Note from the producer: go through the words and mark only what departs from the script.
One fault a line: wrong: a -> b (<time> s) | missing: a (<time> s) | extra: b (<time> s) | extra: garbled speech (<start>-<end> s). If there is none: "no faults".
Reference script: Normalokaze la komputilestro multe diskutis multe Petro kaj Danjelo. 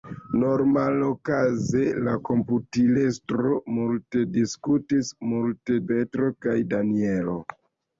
no faults